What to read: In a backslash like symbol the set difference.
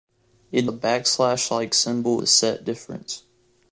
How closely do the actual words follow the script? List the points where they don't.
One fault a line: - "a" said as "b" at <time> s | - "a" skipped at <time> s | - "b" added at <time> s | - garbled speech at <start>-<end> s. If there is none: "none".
none